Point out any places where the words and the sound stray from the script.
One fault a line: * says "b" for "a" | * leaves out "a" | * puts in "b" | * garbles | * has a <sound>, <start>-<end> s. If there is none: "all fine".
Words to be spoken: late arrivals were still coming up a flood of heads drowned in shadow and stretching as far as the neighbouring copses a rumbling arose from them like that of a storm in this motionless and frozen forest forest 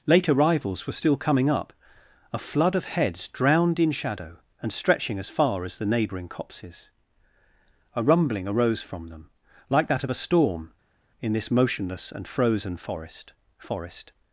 all fine